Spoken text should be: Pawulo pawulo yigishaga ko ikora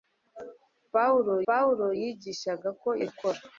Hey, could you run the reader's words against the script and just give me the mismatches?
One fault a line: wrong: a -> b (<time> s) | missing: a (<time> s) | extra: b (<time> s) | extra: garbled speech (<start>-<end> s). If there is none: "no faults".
no faults